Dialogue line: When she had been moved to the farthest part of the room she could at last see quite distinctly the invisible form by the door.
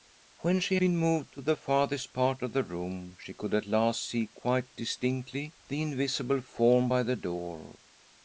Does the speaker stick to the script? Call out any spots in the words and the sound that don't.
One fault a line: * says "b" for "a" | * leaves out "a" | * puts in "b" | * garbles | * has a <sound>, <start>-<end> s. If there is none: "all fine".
* leaves out "had"